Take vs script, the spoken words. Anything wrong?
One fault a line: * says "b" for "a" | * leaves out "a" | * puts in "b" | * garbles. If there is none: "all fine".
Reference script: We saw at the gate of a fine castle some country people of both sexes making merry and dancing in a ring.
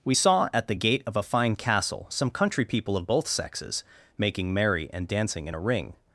all fine